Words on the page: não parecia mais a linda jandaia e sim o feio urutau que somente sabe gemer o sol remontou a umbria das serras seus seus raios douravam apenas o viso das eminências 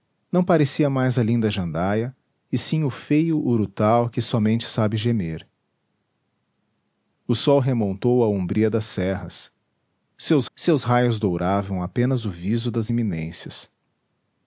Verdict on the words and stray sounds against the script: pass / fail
pass